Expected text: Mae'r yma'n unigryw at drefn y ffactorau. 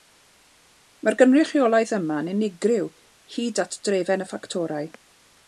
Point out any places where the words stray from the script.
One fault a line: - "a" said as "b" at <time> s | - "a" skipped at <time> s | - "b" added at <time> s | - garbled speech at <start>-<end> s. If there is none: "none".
- "gynrychiolaeth" added at 1.2 s
- "hyd" added at 3.4 s